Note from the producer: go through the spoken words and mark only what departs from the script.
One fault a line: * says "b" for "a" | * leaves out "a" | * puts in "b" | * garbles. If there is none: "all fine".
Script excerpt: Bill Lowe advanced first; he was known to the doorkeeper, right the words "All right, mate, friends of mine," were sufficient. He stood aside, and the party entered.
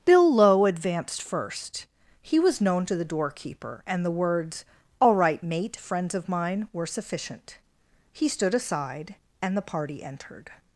* says "and" for "right"